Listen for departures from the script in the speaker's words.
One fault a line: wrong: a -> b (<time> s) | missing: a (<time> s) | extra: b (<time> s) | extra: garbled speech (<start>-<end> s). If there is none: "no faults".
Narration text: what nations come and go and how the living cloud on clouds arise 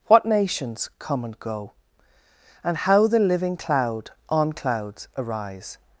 no faults